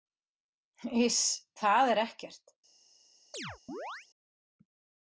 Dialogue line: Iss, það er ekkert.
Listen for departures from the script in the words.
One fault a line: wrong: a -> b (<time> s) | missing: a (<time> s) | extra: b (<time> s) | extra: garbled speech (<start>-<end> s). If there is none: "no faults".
no faults